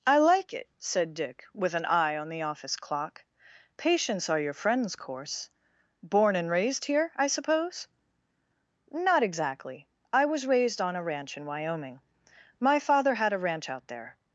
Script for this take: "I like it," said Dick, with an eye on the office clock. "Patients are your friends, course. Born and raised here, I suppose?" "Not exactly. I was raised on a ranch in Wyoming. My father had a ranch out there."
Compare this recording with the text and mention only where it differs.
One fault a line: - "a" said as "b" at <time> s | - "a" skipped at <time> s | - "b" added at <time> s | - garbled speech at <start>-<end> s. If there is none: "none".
none